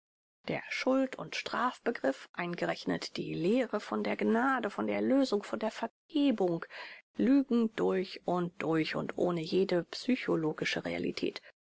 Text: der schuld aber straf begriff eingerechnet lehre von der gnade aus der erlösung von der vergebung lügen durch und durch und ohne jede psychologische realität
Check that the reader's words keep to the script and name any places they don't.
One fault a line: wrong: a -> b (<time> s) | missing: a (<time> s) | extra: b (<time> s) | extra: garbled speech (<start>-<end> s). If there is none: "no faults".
wrong: aber -> und (1.2 s)
extra: die (3.2 s)
wrong: aus -> von (4.7 s)